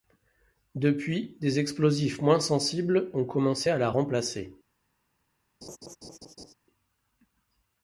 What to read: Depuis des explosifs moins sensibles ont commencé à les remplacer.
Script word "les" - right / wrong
wrong